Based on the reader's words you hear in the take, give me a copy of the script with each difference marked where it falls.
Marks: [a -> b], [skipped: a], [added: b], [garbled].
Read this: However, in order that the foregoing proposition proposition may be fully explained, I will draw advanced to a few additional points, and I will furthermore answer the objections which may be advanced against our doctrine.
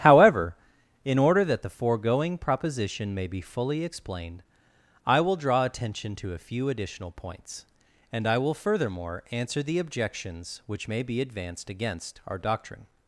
However, in order that the foregoing proposition [skipped: proposition] may be fully explained, I will draw [advanced -> attention] to a few additional points, and I will furthermore answer the objections which may be advanced against our doctrine.